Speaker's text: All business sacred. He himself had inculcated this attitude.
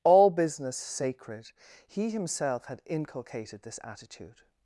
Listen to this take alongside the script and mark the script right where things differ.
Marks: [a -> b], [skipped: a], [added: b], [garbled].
All business sacred. He himself had inculcated this attitude.